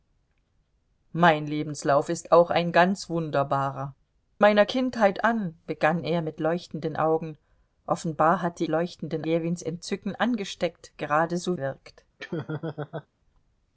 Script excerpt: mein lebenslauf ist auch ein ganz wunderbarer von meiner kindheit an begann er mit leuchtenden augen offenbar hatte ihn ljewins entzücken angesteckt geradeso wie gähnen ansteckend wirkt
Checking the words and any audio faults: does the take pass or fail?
fail